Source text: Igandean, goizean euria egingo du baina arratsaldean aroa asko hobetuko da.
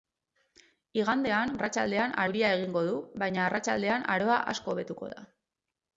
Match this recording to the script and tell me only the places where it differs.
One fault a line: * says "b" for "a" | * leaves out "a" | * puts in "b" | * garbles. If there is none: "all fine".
* says "arratsaldean" for "goizean"